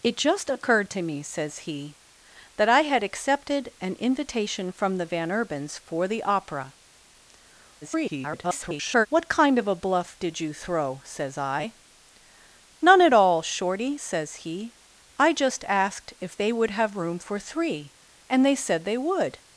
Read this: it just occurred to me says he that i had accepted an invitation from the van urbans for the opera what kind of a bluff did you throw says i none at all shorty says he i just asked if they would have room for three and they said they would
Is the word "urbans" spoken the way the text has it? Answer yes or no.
yes